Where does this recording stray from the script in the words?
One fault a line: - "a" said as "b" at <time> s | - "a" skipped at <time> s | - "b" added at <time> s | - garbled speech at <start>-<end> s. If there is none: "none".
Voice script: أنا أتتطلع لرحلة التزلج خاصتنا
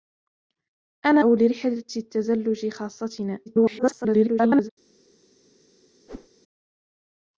- "أتتطلع" skipped at 1.2 s
- garbled speech at 3.5-4.7 s